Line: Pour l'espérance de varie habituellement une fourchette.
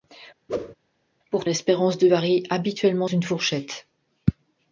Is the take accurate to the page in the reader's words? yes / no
yes